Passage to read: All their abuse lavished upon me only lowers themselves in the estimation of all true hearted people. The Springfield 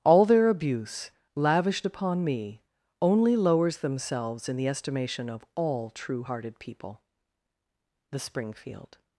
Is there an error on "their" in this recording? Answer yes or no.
no